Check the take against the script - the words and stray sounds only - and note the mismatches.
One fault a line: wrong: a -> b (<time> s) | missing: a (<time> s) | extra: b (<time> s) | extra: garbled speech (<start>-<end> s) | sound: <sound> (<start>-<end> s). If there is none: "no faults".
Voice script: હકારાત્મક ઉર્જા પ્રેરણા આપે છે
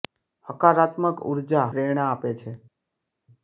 no faults